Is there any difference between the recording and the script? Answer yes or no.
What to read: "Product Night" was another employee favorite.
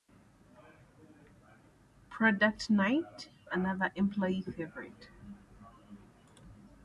yes